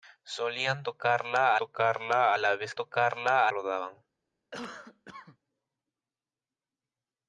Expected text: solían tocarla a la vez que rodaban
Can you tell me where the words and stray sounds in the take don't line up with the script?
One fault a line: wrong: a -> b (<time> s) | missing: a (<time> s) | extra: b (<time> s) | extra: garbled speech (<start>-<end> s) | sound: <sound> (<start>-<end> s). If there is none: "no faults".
extra: tocarla (1.5 s)
wrong: que -> tocarla (2.7 s)
sound: cough (4.5-5.4 s)